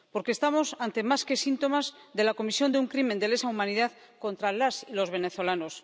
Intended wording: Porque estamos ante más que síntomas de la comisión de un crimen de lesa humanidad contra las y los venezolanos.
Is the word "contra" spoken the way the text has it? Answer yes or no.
yes